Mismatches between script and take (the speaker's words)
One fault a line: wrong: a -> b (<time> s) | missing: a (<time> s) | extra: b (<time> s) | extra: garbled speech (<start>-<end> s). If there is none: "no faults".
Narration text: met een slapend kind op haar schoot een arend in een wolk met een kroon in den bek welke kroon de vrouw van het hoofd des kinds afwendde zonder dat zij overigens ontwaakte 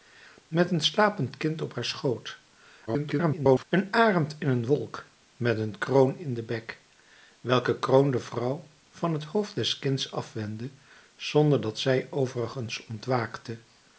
extra: garbled speech (2.9-3.6 s)